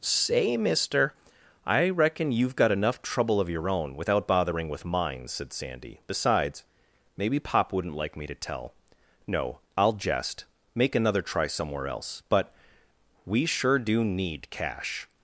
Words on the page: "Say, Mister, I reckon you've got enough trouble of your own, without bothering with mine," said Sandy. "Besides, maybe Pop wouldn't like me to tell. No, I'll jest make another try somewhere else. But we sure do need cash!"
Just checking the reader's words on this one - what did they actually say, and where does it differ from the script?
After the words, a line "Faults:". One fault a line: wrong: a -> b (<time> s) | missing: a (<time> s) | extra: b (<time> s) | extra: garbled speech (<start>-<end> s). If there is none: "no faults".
"Say, Mister, I reckon you've got enough trouble of your own, without bothering with mine," said Sandy. "Besides, maybe Pop wouldn't like me to tell. No, I'll jest make another try somewhere else. But we sure do need cash!"
Faults:
no faults